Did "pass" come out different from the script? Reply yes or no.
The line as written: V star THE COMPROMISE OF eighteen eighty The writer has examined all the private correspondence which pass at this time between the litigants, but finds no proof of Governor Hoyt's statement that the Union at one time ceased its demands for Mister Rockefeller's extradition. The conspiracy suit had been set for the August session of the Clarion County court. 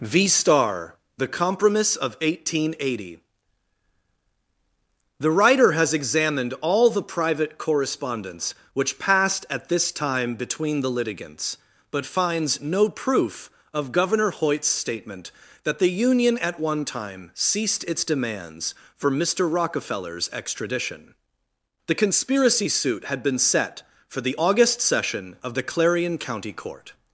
yes